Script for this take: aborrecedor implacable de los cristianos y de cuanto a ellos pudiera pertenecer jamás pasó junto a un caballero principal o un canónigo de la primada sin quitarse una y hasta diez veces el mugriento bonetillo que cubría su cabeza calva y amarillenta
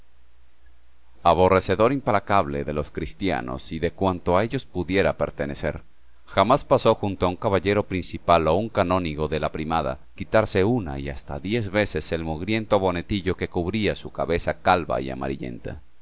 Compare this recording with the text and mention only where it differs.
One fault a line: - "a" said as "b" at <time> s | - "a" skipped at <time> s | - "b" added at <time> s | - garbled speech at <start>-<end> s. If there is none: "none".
- "sin" skipped at 10.1 s